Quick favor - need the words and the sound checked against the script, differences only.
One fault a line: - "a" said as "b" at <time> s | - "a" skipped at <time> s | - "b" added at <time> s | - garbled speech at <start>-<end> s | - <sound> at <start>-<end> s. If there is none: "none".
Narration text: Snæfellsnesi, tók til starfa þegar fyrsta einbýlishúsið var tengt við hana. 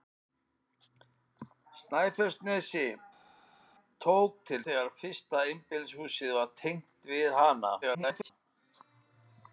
- "starfa" skipped at 4.6 s
- garbled speech at 7.8-8.3 s